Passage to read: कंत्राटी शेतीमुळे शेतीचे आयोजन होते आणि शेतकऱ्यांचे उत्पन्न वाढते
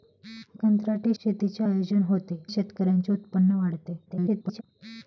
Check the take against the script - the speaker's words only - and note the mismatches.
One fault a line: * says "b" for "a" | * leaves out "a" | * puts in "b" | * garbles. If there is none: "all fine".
* leaves out "शेतीमुळे"
* leaves out "आणि"
* garbles